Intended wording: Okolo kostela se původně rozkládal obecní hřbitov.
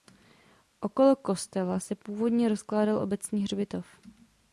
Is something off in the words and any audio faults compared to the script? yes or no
no